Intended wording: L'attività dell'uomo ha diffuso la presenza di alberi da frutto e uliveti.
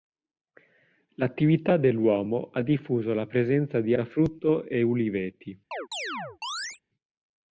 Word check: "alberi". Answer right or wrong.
wrong